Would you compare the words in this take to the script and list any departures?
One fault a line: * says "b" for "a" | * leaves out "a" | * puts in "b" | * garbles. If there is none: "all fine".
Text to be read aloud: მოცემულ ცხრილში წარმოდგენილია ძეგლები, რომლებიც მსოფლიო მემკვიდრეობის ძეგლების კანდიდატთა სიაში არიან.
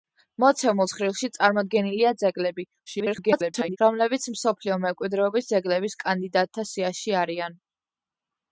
* garbles